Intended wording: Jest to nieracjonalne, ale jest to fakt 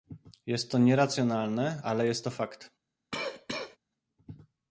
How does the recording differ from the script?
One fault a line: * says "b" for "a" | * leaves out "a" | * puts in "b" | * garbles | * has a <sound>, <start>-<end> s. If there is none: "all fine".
* has a cough, 3.1-3.8 s